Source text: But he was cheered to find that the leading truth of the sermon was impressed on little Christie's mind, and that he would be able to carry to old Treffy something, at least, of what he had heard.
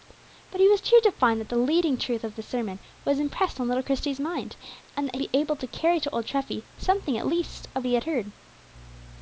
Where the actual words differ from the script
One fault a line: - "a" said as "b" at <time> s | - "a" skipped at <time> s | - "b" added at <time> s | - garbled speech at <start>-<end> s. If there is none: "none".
- "he would" skipped at 5.2 s
- "what" skipped at 7.9 s